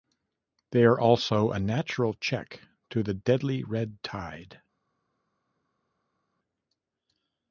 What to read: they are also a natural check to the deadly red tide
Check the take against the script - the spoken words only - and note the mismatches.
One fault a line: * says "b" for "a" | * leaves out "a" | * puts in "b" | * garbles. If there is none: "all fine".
all fine